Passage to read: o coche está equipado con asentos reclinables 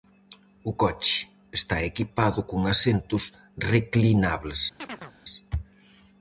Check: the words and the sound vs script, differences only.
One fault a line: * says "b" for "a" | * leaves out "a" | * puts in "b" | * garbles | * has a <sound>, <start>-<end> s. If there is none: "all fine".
* has a chirp, 4.8-5.1 s